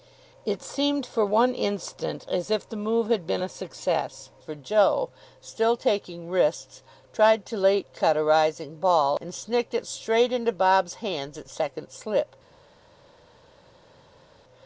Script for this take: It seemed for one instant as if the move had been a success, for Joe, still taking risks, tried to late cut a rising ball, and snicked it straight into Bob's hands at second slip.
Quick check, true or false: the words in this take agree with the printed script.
true